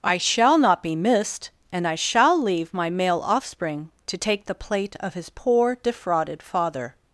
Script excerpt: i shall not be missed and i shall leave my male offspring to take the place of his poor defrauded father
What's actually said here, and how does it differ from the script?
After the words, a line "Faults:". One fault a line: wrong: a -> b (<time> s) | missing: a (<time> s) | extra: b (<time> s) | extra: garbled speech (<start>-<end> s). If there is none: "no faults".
i shall not be missed and i shall leave my male offspring to take the plate of his poor defrauded father
Faults:
wrong: place -> plate (4.5 s)